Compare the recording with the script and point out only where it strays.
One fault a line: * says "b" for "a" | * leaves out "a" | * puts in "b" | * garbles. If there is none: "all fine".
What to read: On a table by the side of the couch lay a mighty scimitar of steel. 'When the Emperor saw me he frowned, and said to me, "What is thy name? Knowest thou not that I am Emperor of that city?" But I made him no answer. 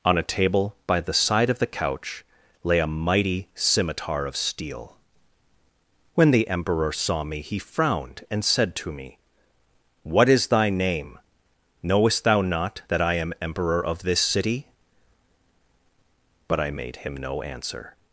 * says "this" for "that"